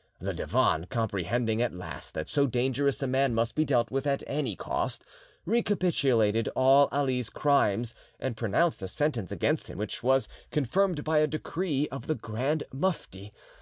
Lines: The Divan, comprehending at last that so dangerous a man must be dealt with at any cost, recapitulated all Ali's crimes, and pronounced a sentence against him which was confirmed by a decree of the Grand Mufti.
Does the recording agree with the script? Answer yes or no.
yes